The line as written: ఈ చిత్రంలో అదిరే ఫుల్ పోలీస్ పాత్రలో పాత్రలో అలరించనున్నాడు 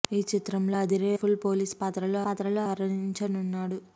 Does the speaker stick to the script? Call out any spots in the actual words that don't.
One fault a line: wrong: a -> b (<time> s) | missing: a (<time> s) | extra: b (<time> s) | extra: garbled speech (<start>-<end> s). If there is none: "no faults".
no faults